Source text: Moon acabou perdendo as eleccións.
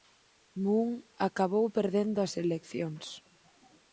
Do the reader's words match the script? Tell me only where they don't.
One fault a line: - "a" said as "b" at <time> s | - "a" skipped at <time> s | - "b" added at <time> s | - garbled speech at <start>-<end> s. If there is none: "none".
none